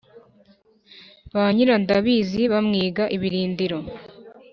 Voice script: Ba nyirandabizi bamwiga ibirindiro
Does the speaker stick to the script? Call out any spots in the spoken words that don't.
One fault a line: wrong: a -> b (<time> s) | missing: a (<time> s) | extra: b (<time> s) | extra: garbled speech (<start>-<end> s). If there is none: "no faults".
no faults